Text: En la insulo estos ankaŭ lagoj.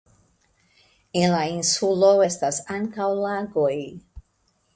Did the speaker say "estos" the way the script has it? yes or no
no